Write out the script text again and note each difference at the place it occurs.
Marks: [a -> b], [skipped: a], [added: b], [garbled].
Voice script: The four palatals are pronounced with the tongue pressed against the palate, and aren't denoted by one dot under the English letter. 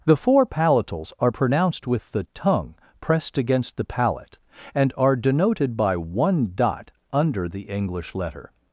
The four palatals are pronounced with the tongue pressed against the palate, and [aren't -> are] denoted by one dot under the English letter.